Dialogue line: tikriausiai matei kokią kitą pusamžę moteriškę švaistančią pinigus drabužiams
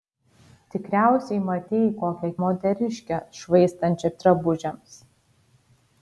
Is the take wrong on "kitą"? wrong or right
wrong